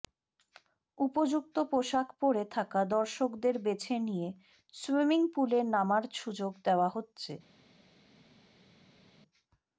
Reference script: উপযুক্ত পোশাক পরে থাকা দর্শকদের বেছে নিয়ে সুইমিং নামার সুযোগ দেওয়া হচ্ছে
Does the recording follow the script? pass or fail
fail